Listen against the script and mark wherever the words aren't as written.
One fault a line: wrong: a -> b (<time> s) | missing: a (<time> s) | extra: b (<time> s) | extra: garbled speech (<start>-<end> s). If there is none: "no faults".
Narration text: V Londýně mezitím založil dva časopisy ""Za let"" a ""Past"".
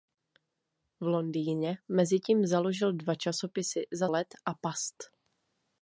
no faults